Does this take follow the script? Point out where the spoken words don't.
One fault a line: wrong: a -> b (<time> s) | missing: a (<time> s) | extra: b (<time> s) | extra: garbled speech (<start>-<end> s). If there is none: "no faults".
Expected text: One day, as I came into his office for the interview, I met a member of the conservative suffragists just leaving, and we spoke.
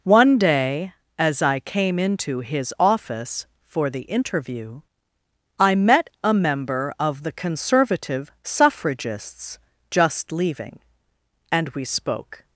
no faults